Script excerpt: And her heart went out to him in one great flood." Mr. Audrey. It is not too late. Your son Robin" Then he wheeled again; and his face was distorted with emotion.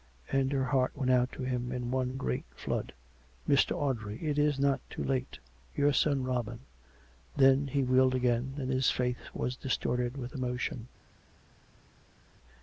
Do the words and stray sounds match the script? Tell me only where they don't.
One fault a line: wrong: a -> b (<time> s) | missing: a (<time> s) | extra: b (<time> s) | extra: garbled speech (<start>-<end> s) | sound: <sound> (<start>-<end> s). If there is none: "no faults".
no faults